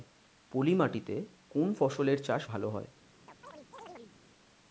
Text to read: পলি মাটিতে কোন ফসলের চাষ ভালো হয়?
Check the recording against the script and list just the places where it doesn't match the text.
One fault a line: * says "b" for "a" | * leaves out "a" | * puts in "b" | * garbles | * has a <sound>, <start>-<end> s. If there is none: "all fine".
* has a chirp, 3.3-4.2 s